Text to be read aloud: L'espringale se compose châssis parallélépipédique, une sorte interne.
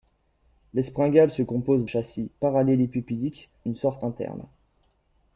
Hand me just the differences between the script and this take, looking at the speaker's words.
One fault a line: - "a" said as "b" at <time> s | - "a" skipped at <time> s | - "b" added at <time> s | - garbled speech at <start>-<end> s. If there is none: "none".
none